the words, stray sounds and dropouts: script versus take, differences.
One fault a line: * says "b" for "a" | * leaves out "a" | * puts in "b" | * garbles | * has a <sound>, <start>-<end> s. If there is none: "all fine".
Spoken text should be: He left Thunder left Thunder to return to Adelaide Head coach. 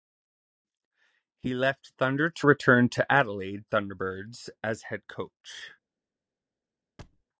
* leaves out "left Thunder"
* puts in "Thunderbirds as"
* has a thud, 7.0-7.2 s